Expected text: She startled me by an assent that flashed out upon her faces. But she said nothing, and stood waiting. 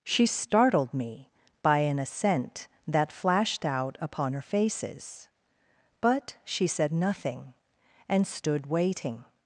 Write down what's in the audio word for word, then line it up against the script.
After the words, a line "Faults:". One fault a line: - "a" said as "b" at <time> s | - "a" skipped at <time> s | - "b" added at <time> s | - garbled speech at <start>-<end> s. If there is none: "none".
She startled me by an assent that flashed out upon her faces. But she said nothing, and stood waiting.
Faults:
none